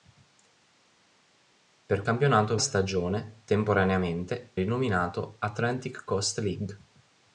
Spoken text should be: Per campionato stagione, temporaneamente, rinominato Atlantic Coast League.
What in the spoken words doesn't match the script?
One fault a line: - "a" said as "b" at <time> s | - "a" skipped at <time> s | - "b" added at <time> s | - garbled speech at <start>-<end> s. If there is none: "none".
none